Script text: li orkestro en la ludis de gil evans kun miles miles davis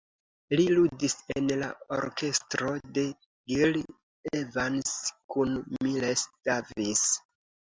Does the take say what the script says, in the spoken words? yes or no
no